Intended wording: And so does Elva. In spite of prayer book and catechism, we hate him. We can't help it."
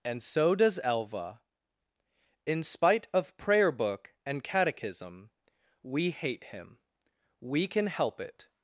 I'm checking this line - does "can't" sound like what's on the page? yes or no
no